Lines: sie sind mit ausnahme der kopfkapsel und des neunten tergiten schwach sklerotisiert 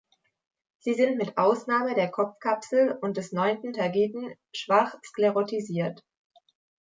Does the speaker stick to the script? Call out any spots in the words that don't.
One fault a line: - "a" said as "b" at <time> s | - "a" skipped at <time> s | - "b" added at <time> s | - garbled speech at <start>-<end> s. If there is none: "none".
none